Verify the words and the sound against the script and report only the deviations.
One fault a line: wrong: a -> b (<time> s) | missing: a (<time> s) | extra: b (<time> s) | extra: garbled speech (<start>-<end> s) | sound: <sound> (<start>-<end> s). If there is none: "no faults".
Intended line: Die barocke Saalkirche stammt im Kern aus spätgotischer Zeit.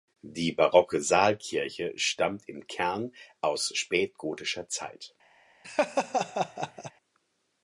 sound: laugh (5.6-6.9 s)